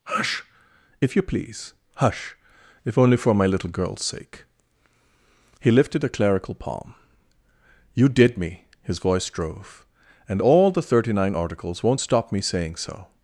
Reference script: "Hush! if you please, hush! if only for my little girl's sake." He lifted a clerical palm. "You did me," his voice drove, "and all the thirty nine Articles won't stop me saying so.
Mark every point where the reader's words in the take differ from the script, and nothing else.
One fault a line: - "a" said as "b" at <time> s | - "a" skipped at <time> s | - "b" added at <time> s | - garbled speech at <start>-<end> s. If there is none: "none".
none